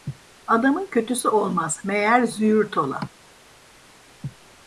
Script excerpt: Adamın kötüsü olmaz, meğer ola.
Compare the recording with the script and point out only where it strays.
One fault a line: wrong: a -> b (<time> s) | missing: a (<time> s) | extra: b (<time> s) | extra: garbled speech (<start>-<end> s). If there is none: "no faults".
extra: züğürt (2.2 s)